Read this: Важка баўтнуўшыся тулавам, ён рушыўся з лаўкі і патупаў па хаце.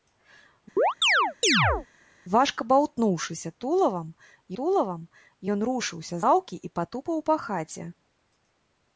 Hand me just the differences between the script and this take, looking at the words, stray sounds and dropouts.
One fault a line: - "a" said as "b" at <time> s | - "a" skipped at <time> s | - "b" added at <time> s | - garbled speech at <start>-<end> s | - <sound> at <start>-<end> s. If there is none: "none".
- chirp at 0.8-1.9 s
- "тулавам" added at 4.6 s
- "з" skipped at 6.2 s